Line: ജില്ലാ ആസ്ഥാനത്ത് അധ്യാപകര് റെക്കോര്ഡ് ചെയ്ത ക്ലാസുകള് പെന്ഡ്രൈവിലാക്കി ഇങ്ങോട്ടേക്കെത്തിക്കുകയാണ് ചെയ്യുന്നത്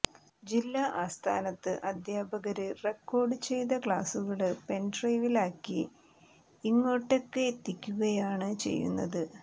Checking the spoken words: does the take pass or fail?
pass